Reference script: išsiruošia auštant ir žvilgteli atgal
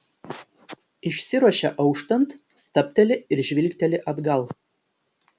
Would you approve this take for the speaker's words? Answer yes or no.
no